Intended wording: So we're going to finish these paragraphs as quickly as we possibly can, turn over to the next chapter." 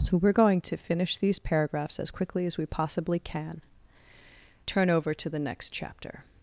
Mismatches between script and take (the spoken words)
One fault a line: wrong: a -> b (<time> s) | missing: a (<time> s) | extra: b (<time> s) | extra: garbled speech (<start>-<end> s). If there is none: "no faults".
no faults